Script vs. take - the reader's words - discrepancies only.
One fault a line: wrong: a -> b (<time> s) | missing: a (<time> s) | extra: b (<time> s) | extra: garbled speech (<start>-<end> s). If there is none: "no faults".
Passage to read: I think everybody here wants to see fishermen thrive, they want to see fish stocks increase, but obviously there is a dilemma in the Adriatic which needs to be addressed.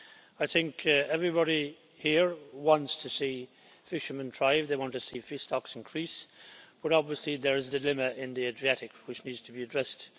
no faults